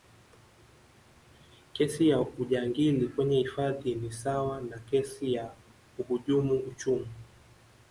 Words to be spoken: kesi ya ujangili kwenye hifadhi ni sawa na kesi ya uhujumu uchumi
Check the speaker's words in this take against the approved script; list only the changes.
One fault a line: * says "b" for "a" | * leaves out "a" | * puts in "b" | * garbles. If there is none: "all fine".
all fine